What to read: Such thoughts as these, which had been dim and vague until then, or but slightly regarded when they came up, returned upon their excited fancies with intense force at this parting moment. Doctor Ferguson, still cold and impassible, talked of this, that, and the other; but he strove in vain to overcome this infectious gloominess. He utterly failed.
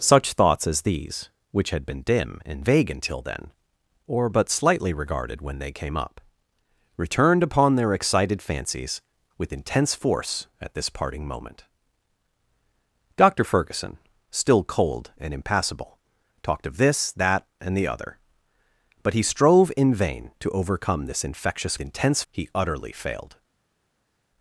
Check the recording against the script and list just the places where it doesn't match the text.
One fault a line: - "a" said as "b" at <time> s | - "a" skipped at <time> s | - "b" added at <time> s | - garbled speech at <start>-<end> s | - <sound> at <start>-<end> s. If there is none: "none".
- "gloominess" said as "intense" at 21.8 s